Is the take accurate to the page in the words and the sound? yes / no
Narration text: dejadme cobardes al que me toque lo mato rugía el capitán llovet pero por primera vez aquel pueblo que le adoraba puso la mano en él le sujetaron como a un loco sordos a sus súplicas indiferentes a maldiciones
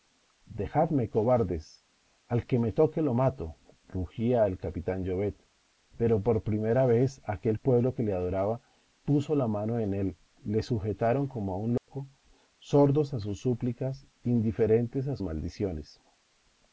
no